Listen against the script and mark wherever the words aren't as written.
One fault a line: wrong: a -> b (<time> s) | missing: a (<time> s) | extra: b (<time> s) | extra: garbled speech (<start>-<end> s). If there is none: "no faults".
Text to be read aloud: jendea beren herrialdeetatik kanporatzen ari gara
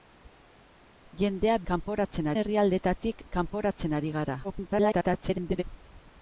wrong: beren -> kanporatzen (1.7 s)
extra: garbled speech (4.4-5.6 s)